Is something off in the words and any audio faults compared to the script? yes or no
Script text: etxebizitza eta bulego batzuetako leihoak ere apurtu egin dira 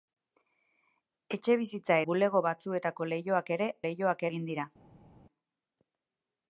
yes